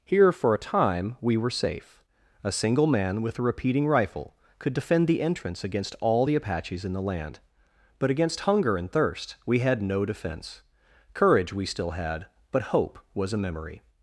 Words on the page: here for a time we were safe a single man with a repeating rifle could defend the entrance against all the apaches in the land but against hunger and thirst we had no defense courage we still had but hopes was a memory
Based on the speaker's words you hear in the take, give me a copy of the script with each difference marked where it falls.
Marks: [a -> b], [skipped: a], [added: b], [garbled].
here for a time we were safe a single man with a repeating rifle could defend the entrance against all the apaches in the land but against hunger and thirst we had no defense courage we still had but [hopes -> hope] was a memory